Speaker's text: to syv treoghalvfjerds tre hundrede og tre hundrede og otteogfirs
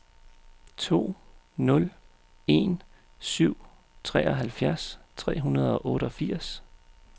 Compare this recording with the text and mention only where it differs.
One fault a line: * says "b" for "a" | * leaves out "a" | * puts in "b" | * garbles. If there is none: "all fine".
* puts in "nul en"
* leaves out "tre hundrede og"